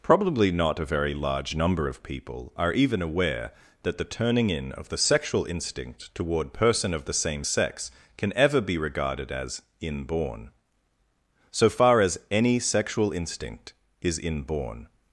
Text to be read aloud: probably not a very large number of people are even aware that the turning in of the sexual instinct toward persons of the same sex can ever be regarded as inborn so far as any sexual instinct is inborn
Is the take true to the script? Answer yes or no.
no